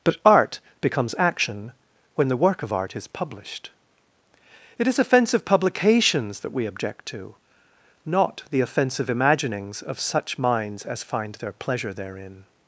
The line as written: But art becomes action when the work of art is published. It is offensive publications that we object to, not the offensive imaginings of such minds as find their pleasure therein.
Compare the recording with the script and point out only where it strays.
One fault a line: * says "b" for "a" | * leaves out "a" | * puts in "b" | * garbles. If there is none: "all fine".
all fine